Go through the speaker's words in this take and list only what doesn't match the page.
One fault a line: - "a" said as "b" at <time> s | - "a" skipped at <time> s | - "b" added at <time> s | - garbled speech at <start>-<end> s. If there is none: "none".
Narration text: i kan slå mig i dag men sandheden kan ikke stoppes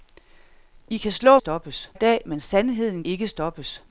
- "mig" said as "stoppes" at 1.4 s
- "kan" skipped at 3.0 s